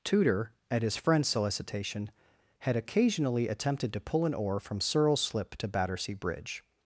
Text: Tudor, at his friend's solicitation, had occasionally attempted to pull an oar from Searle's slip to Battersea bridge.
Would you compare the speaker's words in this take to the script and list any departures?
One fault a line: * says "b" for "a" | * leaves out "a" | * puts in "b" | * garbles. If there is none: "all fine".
all fine